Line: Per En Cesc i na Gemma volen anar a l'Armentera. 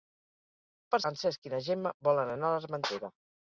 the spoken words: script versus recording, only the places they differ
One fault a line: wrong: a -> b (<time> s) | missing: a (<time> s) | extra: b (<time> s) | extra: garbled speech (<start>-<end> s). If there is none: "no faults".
no faults